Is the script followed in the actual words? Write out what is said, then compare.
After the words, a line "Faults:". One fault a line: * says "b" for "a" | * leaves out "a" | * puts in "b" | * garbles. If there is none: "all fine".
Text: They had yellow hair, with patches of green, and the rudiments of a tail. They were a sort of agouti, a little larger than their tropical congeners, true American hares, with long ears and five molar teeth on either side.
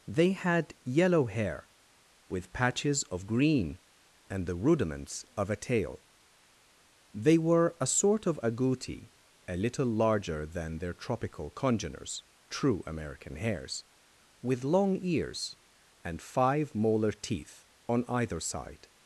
They had yellow hair, with patches of green, and the rudiments of a tail. They were a sort of agouti, a little larger than their tropical congeners, true American hares, with long ears and five molar teeth on either side.
Faults:
all fine